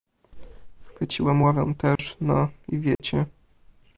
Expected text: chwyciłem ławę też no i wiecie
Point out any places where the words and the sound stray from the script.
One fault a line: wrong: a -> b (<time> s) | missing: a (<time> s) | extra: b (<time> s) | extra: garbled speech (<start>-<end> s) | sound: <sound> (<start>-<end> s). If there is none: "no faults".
sound: dropout (2.0-2.0 s)
sound: dropout (2.9-3.0 s)